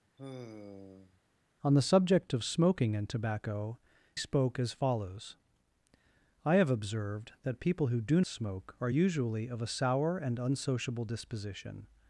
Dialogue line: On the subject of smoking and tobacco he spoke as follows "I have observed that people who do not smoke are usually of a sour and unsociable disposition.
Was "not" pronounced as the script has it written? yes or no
no